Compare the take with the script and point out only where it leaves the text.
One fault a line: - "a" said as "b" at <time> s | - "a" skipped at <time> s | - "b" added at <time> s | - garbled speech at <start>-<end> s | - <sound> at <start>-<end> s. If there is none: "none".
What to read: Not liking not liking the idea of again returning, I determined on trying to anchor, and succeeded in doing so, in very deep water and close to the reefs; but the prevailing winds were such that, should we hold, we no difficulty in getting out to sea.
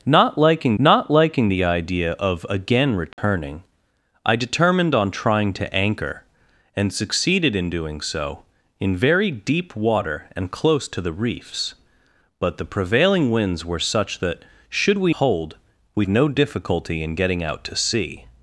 - dropout at 3.1-3.2 s